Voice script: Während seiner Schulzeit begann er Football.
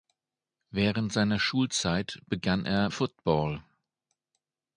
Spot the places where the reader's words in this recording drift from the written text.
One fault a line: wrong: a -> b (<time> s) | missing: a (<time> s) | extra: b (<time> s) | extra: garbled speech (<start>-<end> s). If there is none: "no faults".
no faults